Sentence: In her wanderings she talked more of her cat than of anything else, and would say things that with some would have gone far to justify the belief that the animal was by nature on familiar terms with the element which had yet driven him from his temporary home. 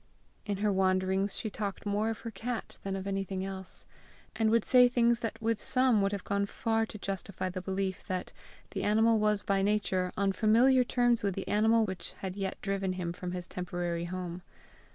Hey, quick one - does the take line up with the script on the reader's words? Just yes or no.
no